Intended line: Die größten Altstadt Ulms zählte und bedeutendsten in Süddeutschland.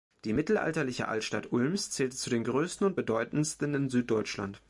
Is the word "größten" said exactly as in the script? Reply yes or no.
no